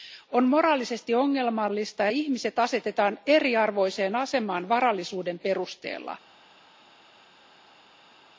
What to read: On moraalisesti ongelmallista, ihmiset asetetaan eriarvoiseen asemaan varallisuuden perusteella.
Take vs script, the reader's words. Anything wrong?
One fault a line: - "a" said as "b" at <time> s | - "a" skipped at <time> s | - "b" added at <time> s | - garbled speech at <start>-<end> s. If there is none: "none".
none